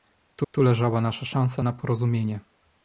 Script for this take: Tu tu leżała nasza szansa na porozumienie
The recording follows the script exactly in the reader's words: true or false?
true